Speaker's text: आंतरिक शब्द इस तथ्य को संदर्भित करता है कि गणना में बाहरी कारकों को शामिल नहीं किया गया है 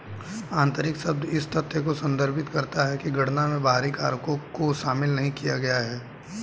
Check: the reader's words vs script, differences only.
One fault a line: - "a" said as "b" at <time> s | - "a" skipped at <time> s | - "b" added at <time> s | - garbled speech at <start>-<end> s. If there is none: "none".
none